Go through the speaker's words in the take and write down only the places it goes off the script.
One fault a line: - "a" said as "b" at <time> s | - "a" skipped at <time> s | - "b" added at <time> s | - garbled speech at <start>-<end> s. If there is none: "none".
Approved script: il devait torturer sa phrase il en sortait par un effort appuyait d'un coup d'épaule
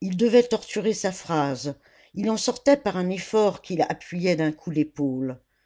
- "qu'il" added at 3.6 s